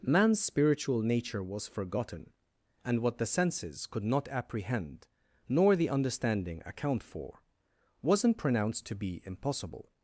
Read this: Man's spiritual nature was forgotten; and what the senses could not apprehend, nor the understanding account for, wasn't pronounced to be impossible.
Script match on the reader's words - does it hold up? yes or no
yes